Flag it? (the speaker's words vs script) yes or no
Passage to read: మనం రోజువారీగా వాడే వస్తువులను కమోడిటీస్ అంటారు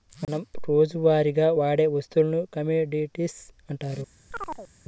no